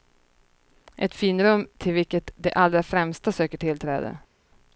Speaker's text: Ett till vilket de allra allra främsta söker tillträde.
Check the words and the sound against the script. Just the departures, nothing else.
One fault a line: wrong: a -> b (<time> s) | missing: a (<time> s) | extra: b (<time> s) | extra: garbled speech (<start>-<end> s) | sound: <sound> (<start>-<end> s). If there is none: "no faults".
extra: finrum (1.1 s)
missing: allra (2.8 s)